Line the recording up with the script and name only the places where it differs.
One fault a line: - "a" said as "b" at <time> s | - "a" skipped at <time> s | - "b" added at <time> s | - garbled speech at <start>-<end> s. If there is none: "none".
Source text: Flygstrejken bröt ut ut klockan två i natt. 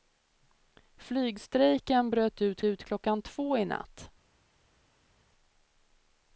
none